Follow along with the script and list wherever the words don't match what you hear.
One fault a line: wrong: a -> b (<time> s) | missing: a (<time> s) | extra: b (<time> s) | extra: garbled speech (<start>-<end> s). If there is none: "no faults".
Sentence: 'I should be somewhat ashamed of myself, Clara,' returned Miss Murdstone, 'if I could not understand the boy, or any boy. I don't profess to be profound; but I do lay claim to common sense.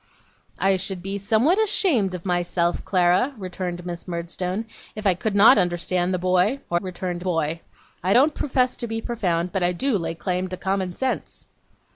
wrong: any -> returned (6.8 s)